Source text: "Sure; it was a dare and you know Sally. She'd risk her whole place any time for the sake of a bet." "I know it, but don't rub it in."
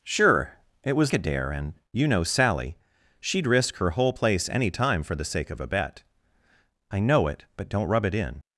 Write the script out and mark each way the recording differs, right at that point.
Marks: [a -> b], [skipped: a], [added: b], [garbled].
"Sure; it was a dare and you know Sally. She'd risk her whole place any time for the sake of a bet." "I know it, but don't rub it in."